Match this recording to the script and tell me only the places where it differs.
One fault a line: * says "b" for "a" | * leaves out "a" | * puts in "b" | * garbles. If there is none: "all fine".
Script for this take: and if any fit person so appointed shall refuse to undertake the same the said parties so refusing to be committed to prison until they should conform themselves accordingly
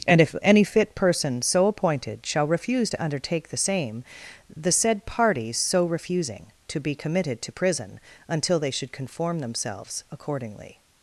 all fine